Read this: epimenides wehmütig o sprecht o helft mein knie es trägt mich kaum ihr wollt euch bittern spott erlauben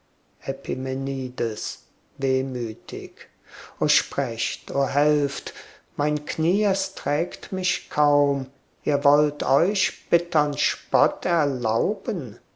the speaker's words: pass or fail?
pass